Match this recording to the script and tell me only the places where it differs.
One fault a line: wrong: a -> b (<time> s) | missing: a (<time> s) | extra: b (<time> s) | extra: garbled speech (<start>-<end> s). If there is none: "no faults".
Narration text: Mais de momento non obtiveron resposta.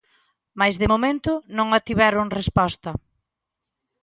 no faults